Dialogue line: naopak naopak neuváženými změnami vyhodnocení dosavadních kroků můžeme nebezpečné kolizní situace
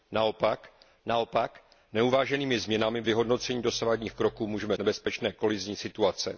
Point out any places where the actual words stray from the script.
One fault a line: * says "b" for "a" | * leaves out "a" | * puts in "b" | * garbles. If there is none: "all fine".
all fine